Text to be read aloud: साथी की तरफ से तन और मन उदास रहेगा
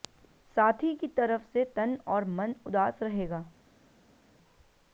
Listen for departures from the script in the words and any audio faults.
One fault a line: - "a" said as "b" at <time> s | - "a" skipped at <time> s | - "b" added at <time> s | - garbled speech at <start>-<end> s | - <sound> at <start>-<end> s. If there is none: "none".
none